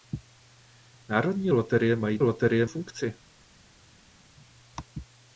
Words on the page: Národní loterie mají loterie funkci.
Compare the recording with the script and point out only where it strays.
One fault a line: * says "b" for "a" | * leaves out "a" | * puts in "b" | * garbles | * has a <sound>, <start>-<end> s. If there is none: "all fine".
all fine